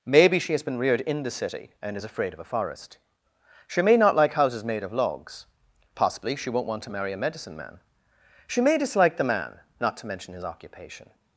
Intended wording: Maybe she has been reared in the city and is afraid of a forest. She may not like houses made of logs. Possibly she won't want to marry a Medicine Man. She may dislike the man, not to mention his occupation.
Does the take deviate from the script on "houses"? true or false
false